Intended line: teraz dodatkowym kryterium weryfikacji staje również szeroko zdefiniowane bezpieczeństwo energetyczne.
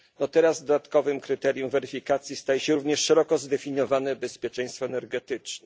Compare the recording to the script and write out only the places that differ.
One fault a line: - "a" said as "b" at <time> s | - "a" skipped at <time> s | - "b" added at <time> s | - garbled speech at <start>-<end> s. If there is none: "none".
- "się" added at 2.6 s